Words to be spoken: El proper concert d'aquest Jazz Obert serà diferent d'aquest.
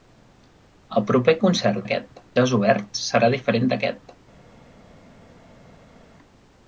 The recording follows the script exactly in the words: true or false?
true